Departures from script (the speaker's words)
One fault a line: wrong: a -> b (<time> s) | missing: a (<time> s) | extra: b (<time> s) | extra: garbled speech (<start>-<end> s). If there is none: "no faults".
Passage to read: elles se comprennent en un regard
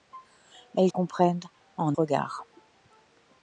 missing: se (0.9 s)
missing: un (2.0 s)